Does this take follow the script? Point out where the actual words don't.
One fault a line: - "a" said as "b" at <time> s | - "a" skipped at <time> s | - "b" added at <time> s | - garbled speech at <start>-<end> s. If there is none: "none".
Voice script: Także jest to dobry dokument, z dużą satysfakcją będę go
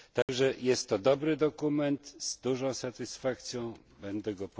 none